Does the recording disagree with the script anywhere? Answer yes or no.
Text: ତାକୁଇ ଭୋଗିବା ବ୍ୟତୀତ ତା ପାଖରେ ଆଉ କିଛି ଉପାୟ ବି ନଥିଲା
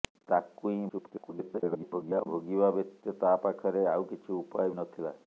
yes